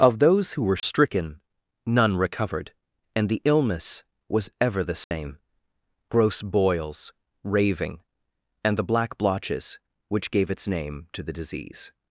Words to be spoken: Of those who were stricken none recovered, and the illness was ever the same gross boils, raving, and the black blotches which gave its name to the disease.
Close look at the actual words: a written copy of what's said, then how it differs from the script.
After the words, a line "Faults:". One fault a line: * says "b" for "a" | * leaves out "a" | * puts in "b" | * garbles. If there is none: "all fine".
Of those who were stricken none recovered, and the illness was ever the same gross boils, raving, and the black blotches which gave its name to the disease.
Faults:
all fine